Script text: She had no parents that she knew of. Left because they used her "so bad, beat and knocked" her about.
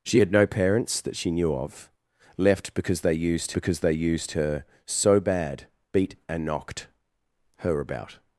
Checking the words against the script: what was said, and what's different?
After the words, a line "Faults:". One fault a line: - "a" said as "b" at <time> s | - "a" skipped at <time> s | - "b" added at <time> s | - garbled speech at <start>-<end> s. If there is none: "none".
She had no parents that she knew of. Left because they used because they used her "so bad, beat and knocked" her about.
Faults:
- "because they used" added at 3.5 s